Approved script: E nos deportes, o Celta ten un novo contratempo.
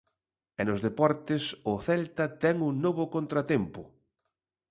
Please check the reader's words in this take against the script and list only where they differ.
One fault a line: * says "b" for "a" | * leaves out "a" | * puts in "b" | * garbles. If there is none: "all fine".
all fine